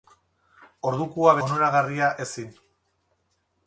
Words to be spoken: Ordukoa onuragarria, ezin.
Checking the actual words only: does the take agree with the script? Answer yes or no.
yes